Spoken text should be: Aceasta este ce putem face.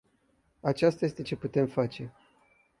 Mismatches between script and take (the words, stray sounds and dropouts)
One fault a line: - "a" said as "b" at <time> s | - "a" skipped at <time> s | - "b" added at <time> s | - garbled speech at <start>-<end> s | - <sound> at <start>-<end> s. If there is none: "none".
none